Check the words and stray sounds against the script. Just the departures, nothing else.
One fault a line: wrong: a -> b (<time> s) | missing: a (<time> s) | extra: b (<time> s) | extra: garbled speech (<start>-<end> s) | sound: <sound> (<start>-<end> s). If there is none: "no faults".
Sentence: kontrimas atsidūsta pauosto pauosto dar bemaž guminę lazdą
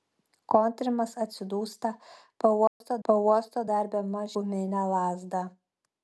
sound: dropout (2.7-2.8 s)